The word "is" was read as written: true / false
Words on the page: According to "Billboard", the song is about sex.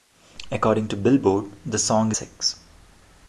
false